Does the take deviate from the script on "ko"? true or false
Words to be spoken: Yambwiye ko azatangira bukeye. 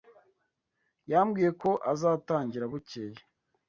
false